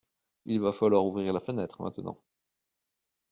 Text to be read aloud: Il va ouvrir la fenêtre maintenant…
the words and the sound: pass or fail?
fail